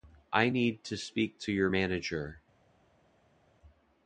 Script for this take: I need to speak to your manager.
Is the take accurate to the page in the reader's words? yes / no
yes